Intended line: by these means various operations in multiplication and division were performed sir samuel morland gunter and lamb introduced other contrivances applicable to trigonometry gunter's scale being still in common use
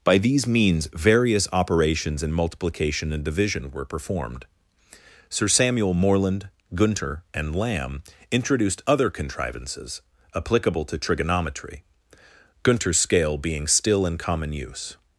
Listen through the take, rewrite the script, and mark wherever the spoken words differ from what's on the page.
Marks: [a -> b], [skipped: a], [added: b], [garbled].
by these means various operations in multiplication and division were performed sir samuel morland gunter and lamb introduced other contrivances applicable to trigonometry gunter's scale being still in common use